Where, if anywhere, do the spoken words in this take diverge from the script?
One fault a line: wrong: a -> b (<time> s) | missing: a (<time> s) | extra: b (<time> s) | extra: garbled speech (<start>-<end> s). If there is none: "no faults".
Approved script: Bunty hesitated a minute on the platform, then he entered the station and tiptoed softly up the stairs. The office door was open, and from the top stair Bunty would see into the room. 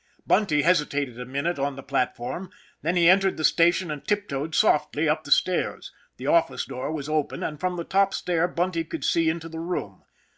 wrong: would -> could (8.8 s)